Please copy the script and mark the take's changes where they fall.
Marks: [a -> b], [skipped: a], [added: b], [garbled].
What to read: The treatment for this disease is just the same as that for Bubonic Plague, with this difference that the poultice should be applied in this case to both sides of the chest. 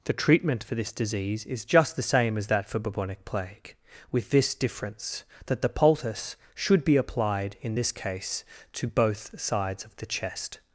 The treatment for this disease is just the same as that for Bubonic Plague, with this difference that the poultice should be applied in this case to both sides of the chest.